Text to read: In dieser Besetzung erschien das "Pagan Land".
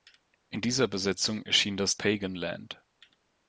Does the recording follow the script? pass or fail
pass